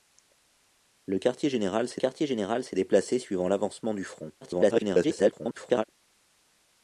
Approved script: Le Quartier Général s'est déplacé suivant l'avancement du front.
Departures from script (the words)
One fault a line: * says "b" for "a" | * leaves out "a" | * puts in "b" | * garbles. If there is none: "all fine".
* puts in "Quartier Général s'est"
* garbles